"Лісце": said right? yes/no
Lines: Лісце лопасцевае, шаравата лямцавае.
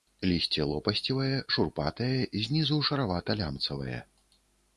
yes